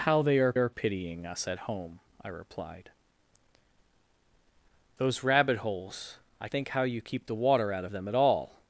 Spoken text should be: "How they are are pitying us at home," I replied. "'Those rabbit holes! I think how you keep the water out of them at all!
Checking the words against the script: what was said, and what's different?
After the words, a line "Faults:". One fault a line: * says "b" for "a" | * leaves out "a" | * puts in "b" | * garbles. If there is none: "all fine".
"How they are are pitying us at home," I replied. "'Those rabbit holes! I think how you keep the water out of them at all!
Faults:
all fine